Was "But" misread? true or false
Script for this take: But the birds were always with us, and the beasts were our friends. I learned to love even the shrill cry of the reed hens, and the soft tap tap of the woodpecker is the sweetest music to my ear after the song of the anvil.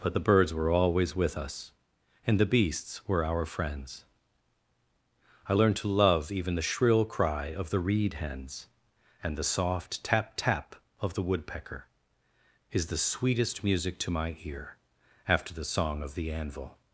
false